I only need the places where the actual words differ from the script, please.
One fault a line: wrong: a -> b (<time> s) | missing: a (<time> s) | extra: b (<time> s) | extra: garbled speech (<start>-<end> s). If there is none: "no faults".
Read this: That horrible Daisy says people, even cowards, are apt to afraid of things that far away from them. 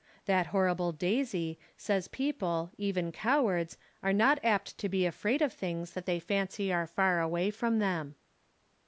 extra: not (4.1 s)
extra: be (4.9 s)
extra: they fancy are (6.1 s)